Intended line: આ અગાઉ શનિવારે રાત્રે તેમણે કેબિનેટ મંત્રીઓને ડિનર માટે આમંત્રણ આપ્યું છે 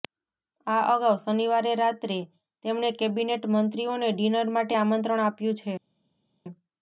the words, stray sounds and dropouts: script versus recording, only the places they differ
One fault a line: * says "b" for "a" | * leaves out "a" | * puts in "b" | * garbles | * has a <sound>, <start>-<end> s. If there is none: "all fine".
all fine